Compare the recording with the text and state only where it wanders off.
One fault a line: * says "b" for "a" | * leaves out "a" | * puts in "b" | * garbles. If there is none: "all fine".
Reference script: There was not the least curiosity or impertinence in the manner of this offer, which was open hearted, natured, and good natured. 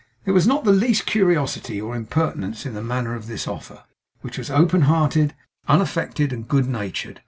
* says "unaffected" for "natured"